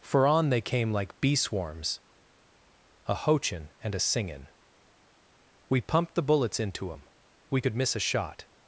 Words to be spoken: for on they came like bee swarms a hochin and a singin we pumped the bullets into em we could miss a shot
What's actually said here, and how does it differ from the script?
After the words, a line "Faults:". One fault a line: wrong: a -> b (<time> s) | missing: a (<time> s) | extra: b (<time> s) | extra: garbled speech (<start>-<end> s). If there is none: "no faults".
for on they came like bee swarms a hochin and a singin we pumped the bullets into em we could miss a shot
Faults:
no faults